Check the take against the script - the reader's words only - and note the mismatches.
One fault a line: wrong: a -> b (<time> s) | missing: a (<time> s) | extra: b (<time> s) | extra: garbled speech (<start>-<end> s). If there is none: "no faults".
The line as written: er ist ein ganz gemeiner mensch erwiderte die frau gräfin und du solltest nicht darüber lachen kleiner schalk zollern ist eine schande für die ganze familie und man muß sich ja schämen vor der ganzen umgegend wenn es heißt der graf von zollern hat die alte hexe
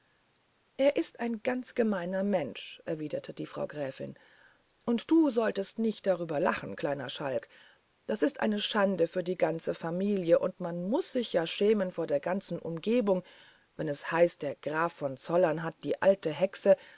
wrong: zollern -> das (8.1 s)